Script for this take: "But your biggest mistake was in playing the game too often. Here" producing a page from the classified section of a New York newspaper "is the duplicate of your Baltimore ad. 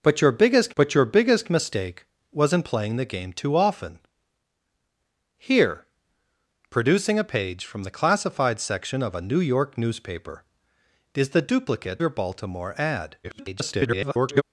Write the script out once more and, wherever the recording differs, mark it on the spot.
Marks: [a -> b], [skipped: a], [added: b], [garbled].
"But your biggest [added: but your biggest] mistake was in playing the game too often. Here" producing a page from the classified section of a New York newspaper "is the duplicate [skipped: of] your Baltimore ad. [garbled]